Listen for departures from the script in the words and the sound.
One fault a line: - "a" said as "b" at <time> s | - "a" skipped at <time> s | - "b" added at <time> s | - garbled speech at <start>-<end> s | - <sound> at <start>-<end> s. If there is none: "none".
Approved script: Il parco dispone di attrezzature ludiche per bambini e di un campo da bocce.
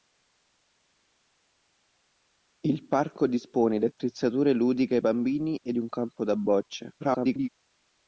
- "per" skipped at 5.0 s
- "di" skipped at 5.7 s
- garbled speech at 7.0-7.5 s